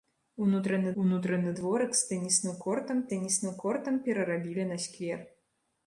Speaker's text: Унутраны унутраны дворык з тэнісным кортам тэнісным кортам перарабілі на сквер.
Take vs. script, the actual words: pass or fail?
pass